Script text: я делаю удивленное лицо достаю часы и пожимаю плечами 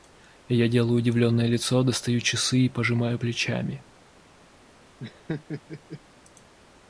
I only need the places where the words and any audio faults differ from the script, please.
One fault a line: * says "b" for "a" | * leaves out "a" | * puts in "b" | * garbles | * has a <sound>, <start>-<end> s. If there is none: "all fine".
* has a laugh, 5.0-6.0 s